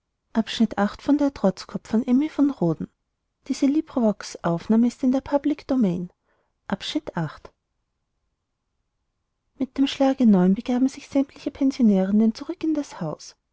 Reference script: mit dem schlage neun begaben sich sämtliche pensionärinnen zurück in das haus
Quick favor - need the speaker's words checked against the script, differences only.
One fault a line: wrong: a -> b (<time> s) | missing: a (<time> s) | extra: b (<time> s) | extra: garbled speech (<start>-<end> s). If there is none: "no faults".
no faults